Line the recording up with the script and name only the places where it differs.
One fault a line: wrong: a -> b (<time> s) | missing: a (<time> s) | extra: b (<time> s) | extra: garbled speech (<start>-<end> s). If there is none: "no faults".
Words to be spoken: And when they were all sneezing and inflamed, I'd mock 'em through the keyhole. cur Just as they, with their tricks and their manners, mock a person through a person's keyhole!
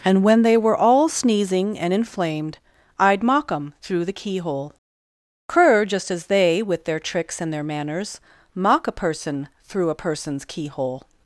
no faults